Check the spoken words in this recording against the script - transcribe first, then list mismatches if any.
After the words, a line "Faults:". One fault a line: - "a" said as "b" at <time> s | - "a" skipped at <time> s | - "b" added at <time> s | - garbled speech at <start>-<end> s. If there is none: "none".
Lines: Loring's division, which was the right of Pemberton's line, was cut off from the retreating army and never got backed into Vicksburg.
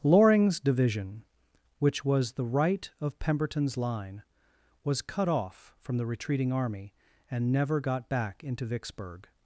Loring's division, which was the right of Pemberton's line, was cut off from the retreating army and never got back into Vicksburg.
Faults:
- "backed" said as "back" at 8.1 s